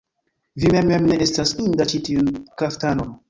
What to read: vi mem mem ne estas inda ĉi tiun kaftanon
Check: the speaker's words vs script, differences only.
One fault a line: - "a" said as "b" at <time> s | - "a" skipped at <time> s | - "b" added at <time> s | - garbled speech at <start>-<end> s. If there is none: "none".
none